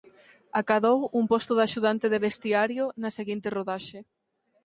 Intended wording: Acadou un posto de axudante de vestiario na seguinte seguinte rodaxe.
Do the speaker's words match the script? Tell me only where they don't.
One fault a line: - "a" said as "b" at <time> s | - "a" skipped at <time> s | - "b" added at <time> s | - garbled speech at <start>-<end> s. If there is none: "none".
- "seguinte" skipped at 3.5 s